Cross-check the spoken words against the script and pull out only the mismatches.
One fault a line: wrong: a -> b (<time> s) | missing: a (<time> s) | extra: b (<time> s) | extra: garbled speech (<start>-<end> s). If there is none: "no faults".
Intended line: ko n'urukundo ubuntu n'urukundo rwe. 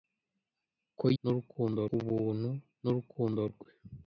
no faults